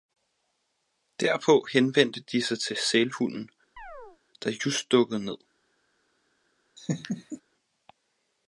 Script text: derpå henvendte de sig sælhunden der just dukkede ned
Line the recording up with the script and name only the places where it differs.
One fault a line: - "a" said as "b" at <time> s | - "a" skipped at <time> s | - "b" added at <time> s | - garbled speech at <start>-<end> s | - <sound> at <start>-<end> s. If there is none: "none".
- "til" added at 2.6 s
- chirp at 3.8-4.2 s
- laugh at 6.8-7.4 s